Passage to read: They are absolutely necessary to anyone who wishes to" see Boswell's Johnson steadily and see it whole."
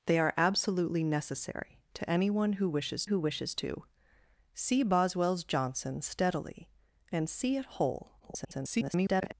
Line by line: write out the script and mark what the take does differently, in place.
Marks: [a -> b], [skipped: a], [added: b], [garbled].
They are absolutely necessary to anyone who wishes [added: who wishes] to" see Boswell's Johnson steadily and see it whole." [garbled]